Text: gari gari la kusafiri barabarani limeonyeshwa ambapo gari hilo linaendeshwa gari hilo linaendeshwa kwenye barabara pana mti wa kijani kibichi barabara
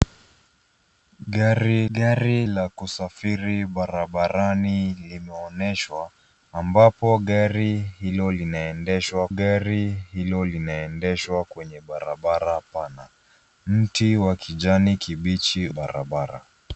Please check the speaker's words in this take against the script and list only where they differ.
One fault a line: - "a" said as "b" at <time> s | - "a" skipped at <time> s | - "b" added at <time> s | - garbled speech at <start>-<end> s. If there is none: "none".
none